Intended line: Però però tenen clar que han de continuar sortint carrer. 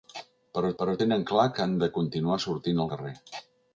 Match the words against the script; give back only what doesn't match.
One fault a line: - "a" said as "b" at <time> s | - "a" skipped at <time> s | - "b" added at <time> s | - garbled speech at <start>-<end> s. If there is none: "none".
none